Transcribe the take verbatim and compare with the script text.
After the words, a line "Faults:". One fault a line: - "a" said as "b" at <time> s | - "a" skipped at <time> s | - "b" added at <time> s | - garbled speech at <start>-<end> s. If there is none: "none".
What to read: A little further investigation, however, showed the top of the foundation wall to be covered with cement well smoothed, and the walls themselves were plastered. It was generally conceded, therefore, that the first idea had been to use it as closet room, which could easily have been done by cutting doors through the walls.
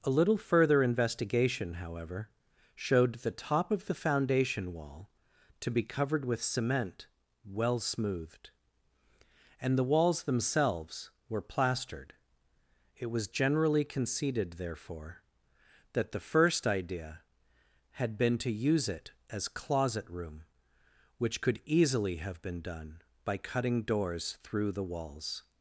A little further investigation, however, showed the top of the foundation wall to be covered with cement well smoothed, and the walls themselves were plastered. It was generally conceded, therefore, that the first idea had been to use it as closet room, which could easily have been done by cutting doors through the walls.
Faults:
none